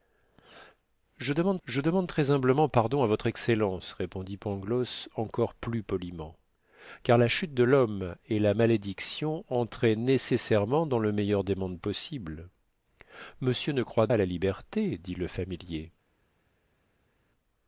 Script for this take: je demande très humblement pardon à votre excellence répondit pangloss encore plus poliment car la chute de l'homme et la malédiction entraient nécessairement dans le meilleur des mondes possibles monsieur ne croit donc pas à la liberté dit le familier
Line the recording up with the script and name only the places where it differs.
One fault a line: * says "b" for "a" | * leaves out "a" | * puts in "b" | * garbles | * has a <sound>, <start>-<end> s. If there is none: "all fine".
* puts in "je demande"
* leaves out "donc pas"